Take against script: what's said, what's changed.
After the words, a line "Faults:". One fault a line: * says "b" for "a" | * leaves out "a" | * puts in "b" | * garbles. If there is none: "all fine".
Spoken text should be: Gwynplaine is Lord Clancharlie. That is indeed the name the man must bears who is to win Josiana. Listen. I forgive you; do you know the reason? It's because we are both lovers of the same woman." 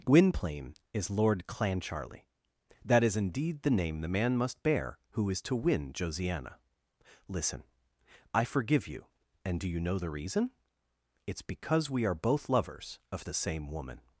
Gwynplaine is Lord Clancharlie. That is indeed the name the man must bear who is to win Josiana. Listen. I forgive you; and do you know the reason? It's because we are both lovers of the same woman."
Faults:
* says "bear" for "bears"
* puts in "and"